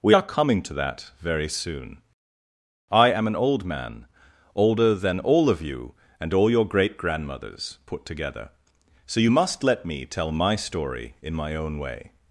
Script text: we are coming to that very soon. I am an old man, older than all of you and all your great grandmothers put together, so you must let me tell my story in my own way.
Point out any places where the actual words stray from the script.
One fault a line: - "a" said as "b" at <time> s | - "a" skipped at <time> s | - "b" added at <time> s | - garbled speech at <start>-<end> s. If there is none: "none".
none